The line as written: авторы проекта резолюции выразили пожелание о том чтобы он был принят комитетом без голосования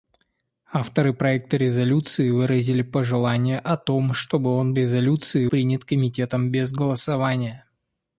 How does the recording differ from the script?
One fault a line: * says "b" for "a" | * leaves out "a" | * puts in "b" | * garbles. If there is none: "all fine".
* says "резолюции" for "был"